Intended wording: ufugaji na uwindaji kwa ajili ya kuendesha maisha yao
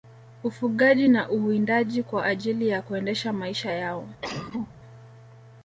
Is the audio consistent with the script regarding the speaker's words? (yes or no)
yes